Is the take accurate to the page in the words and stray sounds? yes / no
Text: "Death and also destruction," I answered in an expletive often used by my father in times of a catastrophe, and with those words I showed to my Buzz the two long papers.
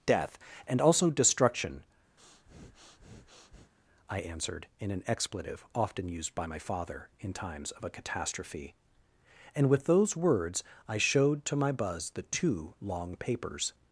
no